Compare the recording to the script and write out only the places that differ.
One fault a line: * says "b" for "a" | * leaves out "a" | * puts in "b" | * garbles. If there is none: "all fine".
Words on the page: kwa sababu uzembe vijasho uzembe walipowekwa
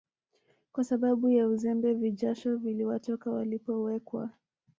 * puts in "ya"
* says "viliwatoka" for "uzembe"